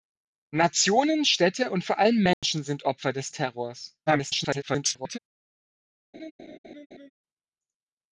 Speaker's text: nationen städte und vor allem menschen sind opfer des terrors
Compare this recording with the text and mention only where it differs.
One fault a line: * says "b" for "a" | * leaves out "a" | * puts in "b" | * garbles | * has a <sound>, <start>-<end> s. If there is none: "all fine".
* has a dropout, 2.3-2.4 s
* garbles
* has a laugh, 6.1-7.1 s